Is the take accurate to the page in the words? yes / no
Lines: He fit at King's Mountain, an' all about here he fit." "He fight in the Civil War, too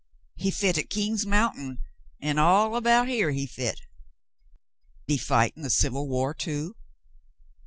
yes